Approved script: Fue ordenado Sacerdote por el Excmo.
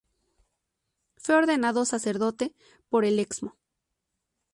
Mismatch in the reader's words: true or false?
false